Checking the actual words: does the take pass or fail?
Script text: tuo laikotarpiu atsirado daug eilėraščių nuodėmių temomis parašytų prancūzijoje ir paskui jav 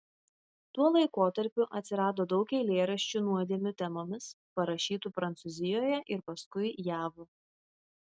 pass